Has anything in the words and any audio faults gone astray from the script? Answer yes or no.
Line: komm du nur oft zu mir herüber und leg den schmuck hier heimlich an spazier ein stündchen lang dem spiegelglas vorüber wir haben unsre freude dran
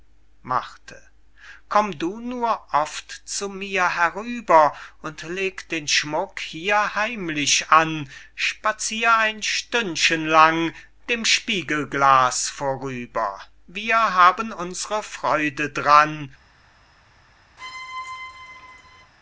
yes